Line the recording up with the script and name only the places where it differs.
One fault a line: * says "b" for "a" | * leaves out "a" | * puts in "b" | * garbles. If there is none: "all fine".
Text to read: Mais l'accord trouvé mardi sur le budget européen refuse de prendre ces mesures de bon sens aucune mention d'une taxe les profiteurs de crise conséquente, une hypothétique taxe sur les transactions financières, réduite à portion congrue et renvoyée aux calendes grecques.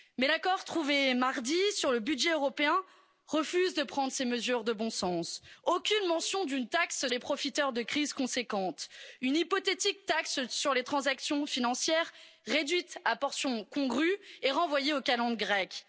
all fine